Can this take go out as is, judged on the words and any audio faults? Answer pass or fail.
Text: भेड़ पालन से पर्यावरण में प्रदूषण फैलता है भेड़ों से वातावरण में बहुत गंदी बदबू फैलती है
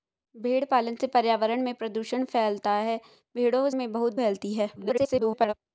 fail